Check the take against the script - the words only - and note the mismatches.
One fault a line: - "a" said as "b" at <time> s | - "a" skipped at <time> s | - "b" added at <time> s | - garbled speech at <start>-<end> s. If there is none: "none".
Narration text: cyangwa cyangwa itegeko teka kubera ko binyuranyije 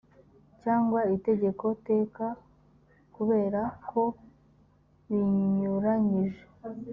- "cyangwa" skipped at 1.0 s